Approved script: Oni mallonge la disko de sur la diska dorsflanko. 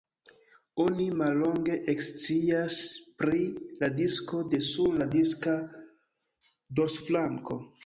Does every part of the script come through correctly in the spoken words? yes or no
no